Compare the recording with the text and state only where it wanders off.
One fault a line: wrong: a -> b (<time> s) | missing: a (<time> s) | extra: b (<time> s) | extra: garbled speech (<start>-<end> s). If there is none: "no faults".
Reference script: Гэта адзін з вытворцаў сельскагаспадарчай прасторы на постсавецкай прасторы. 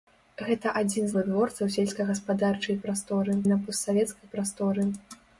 no faults